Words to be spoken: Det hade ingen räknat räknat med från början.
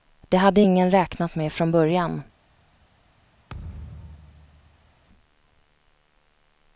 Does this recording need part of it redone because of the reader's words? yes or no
yes